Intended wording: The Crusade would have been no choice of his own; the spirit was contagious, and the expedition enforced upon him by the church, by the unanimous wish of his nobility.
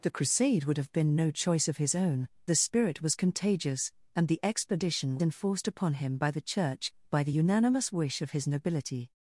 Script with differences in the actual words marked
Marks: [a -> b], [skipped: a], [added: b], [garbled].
The Crusade would have been no choice of his own; the spirit was contagious, and the expedition enforced upon him by the church, by the unanimous wish of his nobility.